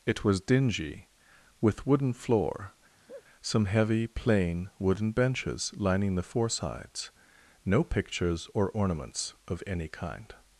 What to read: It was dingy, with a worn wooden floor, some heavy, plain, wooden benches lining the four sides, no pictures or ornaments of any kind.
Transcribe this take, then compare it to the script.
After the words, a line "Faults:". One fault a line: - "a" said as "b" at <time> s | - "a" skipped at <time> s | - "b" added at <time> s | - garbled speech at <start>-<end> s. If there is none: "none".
It was dingy, with wooden floor, some heavy, plain, wooden benches lining the four sides, no pictures or ornaments of any kind.
Faults:
- "a worn" skipped at 1.9 s